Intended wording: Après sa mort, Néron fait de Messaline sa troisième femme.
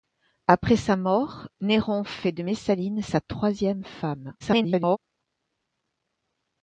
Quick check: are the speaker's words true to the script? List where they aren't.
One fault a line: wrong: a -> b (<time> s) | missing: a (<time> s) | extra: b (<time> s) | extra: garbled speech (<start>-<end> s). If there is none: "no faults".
extra: garbled speech (4.4-5.0 s)